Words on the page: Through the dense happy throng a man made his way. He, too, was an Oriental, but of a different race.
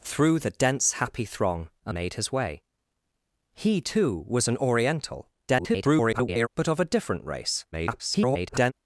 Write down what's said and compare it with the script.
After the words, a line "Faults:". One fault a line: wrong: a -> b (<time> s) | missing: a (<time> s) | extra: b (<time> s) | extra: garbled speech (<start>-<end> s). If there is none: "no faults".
Through the dense happy throng a made his way. He, too, was an Oriental, [garbled] but of a different race. [garbled]
Faults:
missing: man (1.9 s)
extra: garbled speech (5.5-6.5 s)
extra: garbled speech (7.7-8.7 s)